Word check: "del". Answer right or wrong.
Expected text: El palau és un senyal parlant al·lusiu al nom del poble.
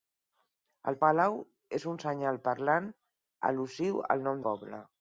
wrong